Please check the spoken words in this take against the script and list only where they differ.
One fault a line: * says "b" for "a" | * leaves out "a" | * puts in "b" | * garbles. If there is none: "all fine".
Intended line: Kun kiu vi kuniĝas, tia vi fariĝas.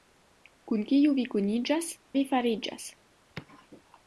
* leaves out "tia"